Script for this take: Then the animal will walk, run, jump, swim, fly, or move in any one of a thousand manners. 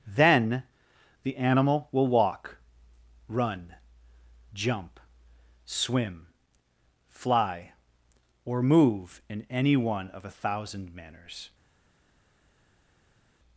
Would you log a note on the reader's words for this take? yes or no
no